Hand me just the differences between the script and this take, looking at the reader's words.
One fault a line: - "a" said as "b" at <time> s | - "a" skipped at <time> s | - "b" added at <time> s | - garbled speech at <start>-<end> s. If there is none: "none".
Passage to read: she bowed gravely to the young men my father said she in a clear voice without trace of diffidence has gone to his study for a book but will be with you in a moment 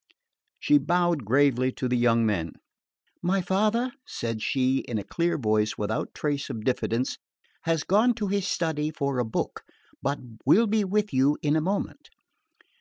none